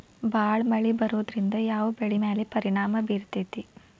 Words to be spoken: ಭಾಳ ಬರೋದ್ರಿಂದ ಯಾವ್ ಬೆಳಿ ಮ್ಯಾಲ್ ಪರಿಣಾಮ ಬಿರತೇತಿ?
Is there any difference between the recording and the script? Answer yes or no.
yes